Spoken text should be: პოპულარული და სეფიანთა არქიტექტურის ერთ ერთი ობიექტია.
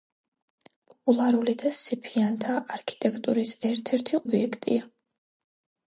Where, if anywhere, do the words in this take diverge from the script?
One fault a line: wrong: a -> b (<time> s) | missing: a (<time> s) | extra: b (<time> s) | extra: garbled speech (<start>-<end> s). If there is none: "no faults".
no faults